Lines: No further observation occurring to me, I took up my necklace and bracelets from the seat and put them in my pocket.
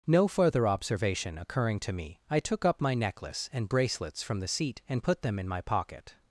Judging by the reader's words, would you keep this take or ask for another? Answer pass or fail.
pass